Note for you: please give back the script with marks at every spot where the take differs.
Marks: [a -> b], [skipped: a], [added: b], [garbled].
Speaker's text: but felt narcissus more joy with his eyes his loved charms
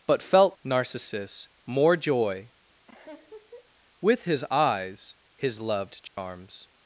but felt narcissus more joy with his eyes his loved charms